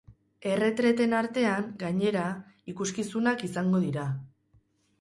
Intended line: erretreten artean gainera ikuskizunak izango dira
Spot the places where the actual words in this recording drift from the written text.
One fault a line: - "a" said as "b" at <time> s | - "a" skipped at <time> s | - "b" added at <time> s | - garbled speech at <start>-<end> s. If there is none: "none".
none